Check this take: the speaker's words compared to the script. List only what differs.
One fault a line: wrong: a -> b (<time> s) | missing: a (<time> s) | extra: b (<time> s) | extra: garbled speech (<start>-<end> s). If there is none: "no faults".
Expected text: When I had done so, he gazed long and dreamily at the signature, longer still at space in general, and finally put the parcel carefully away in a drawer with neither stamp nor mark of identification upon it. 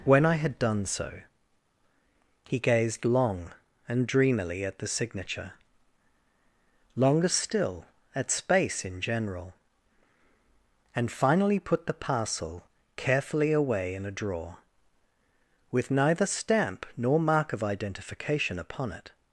no faults